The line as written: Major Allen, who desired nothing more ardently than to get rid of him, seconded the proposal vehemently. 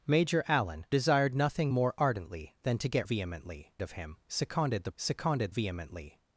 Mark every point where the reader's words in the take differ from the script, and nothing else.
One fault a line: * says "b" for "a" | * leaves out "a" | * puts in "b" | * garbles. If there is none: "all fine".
* leaves out "who"
* says "vehemently" for "rid"
* says "seconded" for "proposal"